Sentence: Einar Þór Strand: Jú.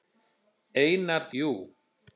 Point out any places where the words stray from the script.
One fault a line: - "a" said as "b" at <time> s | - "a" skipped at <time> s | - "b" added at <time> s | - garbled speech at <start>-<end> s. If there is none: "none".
- "Þór Strand" skipped at 1.3 s